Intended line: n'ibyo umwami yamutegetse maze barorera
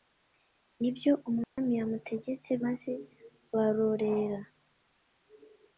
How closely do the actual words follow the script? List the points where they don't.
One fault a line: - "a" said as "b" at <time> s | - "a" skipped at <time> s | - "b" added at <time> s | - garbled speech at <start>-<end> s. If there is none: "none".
none